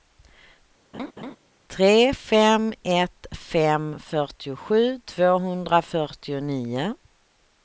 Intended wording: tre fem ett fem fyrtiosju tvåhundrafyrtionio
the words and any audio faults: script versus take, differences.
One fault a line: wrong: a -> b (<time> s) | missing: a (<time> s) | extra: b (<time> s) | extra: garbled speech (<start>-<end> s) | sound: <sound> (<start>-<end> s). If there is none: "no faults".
sound: laugh (0.9-1.4 s)